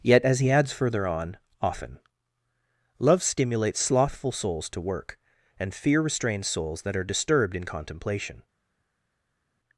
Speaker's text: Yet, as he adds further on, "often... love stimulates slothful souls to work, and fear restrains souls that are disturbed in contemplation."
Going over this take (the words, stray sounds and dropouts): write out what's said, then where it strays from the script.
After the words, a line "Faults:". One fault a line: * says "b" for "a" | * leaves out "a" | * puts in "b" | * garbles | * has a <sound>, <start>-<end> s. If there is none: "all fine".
Yet, as he adds further on, "often... love stimulates slothful souls to work, and fear restrains souls that are disturbed in contemplation."
Faults:
all fine